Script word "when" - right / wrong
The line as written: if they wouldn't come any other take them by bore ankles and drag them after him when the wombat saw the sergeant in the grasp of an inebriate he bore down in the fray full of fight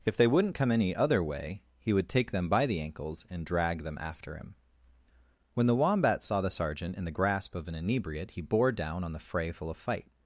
right